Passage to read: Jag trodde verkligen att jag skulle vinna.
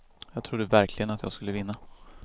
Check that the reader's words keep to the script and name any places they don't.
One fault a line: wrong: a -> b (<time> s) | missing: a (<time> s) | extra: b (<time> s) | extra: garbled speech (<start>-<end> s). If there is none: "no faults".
no faults